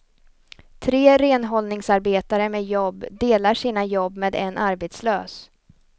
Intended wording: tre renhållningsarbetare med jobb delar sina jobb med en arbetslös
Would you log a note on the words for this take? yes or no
no